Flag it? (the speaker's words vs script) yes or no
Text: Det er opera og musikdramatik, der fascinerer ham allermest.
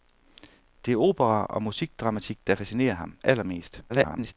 yes